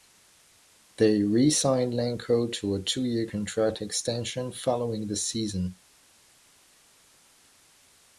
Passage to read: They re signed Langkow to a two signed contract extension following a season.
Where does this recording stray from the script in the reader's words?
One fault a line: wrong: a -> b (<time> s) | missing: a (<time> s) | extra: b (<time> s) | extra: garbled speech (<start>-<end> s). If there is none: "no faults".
wrong: signed -> year (3.0 s)
wrong: a -> the (5.1 s)